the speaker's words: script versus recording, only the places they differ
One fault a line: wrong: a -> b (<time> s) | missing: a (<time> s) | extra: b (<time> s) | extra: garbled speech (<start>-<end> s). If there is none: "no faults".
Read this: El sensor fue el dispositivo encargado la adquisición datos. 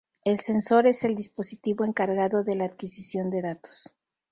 wrong: fue -> es (0.9 s)
extra: de (2.4 s)
extra: de (3.3 s)